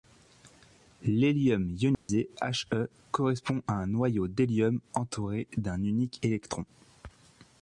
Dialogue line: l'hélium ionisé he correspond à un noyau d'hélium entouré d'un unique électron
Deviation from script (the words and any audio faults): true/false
true